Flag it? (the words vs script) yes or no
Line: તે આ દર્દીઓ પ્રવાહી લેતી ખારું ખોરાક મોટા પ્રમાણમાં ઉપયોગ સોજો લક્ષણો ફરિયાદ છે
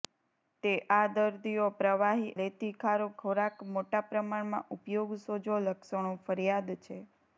no